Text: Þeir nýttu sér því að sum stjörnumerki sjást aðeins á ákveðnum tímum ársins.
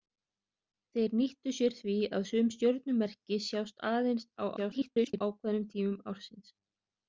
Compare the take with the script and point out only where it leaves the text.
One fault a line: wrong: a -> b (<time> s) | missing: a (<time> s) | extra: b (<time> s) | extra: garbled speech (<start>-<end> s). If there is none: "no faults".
extra: garbled speech (4.6-5.2 s)